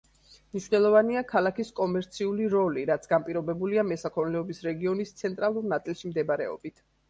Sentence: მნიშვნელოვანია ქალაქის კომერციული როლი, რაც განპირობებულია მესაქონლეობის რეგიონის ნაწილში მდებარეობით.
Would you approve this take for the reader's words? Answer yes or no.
no